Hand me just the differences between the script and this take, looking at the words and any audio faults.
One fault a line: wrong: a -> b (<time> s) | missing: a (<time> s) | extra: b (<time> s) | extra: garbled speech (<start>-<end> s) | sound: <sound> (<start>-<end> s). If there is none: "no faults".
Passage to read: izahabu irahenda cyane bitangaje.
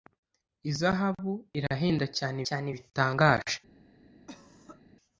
extra: cyane (2.5 s)
sound: cough (4.3-4.8 s)